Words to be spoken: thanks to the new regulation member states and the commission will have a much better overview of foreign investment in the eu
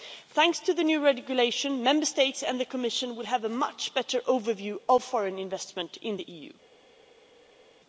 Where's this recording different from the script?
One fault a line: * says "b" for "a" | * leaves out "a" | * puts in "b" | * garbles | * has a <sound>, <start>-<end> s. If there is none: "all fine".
all fine